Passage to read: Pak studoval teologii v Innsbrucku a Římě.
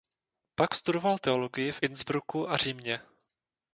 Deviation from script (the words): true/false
false